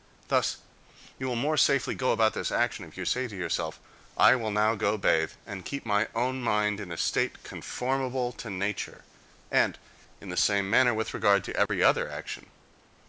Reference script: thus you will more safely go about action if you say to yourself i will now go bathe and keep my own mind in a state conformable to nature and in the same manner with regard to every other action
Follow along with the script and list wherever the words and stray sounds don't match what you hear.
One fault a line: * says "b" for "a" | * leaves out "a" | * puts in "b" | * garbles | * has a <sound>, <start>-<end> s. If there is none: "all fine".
* puts in "this"
* has a dropout, 11.7-11.7 s